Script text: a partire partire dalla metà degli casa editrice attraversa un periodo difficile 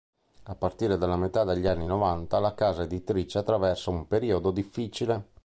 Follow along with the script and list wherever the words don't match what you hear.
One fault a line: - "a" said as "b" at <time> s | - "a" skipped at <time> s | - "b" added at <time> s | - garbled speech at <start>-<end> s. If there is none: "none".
- "partire" skipped at 1.0 s
- "anni novanta la" added at 1.7 s